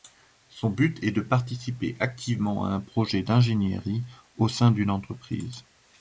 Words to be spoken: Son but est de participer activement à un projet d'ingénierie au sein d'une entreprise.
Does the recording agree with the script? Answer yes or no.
yes